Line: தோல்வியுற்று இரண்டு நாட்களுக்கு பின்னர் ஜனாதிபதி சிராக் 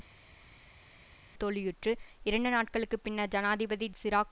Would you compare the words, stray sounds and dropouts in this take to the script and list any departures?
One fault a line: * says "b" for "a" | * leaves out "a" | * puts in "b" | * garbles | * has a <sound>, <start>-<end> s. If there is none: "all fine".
all fine